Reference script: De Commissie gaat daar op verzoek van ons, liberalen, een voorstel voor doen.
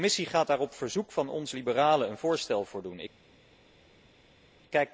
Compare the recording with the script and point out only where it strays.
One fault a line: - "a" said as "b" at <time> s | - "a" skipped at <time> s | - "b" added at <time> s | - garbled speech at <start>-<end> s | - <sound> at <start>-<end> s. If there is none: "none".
none